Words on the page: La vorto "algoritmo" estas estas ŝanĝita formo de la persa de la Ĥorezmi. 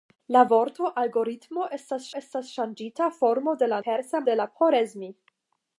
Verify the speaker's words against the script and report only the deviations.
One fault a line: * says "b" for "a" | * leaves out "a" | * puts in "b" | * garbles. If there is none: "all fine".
all fine